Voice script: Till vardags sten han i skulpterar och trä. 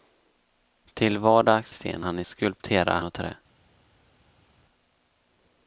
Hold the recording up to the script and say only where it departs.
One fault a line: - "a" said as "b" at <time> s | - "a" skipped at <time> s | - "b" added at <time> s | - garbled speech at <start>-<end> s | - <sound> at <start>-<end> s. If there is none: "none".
none